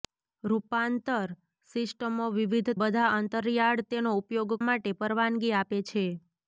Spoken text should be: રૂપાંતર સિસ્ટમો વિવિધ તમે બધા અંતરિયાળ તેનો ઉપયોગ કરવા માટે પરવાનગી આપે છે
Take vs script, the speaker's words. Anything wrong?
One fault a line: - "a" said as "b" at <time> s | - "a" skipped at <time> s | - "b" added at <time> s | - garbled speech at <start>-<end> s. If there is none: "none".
- "તમે" skipped at 2.7 s
- "કરવા" skipped at 4.6 s